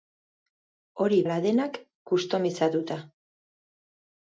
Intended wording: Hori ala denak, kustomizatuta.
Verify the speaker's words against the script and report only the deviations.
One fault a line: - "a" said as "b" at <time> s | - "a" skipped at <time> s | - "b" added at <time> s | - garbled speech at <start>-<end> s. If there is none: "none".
none